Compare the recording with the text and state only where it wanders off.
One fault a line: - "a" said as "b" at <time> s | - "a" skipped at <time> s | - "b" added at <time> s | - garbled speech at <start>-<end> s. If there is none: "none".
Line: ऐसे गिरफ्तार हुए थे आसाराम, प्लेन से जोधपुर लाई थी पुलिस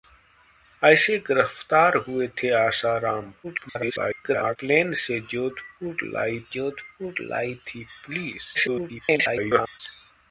- garbled speech at 3.4-4.6 s
- "जोधपुर लाई" added at 6.5 s
- garbled speech at 8.5-9.8 s